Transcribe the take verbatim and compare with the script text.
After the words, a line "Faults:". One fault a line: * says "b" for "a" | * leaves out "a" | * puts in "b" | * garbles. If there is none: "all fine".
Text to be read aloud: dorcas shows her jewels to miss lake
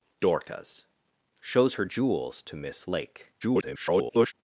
dorcas shows her jewels to miss lake [garbled]
Faults:
* garbles